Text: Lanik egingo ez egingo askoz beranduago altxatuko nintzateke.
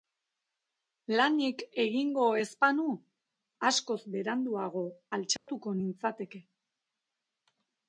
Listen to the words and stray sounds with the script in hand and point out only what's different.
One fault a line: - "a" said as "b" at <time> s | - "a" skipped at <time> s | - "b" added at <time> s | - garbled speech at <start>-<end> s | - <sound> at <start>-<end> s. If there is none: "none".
- "egingo" said as "banu" at 2.7 s
- dropout at 5.4-5.5 s